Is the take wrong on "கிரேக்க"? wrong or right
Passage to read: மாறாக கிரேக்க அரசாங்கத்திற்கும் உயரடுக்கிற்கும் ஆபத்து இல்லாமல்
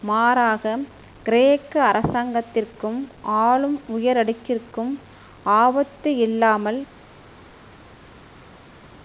right